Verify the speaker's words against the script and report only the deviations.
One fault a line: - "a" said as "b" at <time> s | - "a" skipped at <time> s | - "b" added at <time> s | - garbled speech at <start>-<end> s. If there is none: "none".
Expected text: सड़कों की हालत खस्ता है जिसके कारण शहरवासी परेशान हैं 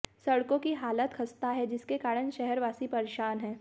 none